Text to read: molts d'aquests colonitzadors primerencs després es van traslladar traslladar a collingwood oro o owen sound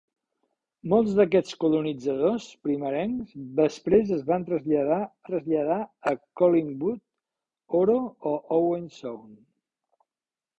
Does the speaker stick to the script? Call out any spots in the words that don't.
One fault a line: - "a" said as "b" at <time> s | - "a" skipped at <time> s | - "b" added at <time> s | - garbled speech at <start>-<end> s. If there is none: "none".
none